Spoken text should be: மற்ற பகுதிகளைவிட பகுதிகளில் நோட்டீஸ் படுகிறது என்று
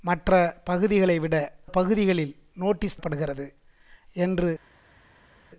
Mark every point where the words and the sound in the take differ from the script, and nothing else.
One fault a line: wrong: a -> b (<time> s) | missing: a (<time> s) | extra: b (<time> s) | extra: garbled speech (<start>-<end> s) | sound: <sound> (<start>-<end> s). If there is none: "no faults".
no faults